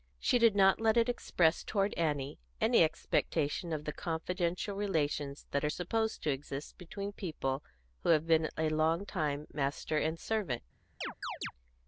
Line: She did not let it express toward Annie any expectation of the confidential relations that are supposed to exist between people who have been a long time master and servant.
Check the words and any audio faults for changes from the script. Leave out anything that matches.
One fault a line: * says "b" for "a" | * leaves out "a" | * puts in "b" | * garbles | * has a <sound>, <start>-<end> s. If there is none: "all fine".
* has a chirp, 11.0-11.5 s